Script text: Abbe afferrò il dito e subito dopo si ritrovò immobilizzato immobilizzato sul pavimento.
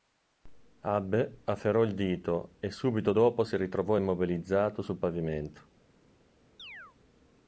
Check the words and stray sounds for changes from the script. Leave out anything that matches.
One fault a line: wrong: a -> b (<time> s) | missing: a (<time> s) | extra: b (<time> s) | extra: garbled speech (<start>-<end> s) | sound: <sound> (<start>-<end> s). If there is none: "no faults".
missing: immobilizzato (4.8 s)
sound: chirp (6.6-7.0 s)